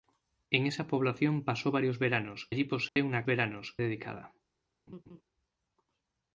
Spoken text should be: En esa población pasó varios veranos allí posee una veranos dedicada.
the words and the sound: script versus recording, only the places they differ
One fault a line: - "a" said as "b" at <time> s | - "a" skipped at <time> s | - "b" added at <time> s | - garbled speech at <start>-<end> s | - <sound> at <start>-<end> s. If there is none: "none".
- dropout at 2.9-3.0 s
- laugh at 4.9-5.2 s